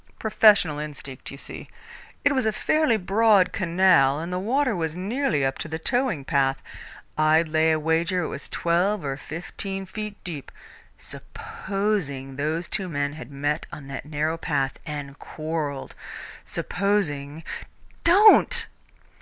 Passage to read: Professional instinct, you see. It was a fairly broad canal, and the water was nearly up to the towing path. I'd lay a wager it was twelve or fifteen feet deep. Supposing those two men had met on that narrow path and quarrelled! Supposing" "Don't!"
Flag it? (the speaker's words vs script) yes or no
no